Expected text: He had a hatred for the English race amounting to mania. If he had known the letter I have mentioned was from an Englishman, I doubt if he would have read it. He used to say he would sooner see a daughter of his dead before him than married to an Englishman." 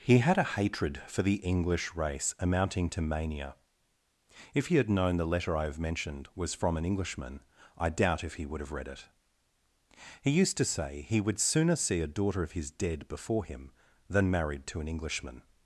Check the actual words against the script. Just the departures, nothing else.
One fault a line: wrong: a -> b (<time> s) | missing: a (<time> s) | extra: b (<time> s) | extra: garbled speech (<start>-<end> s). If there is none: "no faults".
no faults